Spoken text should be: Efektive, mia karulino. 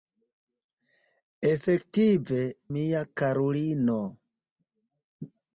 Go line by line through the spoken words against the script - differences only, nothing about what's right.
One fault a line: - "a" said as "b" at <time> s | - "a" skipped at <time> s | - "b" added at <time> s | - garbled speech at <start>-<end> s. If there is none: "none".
none